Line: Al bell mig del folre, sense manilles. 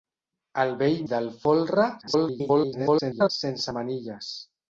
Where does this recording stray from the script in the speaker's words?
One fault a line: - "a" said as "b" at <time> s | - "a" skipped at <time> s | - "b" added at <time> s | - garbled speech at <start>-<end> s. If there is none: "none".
- "mig" skipped at 1.0 s
- garbled speech at 2.0-3.3 s